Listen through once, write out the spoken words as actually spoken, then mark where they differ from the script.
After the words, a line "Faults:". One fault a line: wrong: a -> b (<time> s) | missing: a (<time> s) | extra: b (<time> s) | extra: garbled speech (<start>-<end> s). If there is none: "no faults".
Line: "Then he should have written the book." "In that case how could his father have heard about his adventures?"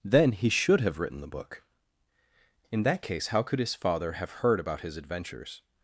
"Then he should have written the book." "In that case how could his father have heard about his adventures?"
Faults:
no faults